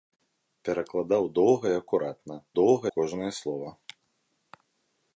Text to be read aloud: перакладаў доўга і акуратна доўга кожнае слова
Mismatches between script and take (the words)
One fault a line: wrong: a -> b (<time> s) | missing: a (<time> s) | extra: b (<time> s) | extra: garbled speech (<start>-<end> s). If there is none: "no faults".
no faults